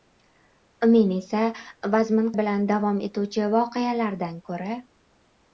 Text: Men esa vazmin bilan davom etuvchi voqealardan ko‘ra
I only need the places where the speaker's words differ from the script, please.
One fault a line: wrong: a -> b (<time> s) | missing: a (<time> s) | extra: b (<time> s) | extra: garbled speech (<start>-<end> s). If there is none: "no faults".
no faults